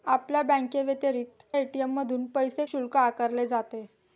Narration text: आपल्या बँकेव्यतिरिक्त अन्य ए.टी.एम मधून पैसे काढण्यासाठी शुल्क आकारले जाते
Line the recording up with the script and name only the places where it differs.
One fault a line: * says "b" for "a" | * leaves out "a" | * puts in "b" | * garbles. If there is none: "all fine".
* leaves out "अन्य"
* leaves out "काढण्यासाठी"